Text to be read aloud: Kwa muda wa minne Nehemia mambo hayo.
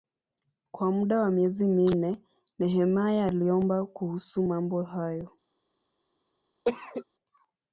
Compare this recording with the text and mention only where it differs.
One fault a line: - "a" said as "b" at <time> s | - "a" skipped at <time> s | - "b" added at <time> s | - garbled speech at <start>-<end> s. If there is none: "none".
- "miezi" added at 1.3 s
- "aliomba kuhusu" added at 3.2 s